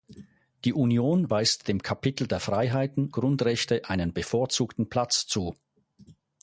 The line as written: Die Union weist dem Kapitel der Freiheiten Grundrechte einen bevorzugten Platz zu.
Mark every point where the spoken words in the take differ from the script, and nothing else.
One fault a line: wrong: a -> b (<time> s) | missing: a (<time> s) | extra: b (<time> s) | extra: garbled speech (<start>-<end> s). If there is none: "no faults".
no faults